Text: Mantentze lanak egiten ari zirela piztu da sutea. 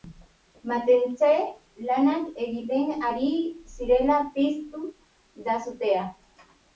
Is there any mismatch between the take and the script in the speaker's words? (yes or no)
no